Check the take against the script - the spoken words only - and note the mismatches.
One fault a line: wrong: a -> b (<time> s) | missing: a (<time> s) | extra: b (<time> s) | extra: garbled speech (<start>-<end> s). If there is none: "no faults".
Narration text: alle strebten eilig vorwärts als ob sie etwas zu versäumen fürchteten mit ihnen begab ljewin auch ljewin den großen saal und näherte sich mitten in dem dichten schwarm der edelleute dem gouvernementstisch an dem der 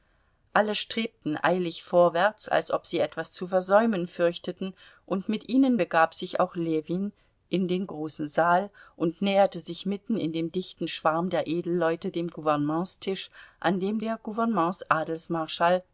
extra: und (5.0 s)
wrong: ljewin -> sich (6.1 s)
extra: in (7.5 s)